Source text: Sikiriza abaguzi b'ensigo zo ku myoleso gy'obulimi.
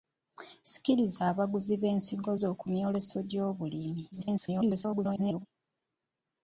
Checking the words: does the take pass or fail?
fail